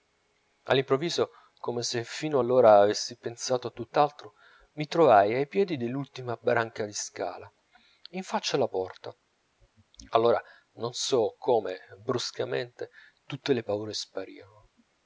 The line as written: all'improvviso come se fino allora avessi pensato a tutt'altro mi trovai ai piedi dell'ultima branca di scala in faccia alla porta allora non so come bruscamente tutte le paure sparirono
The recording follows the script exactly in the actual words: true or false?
true